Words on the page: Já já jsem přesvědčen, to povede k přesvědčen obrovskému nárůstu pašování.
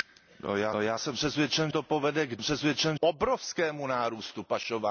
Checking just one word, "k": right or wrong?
right